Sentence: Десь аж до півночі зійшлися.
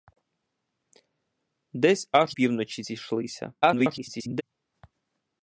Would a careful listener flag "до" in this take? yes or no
yes